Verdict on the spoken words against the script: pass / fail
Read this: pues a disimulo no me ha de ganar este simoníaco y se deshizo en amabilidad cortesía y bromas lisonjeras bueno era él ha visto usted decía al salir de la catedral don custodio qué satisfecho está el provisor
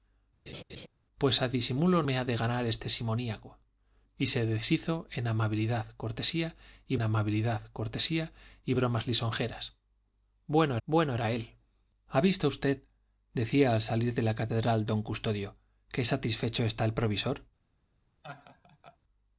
fail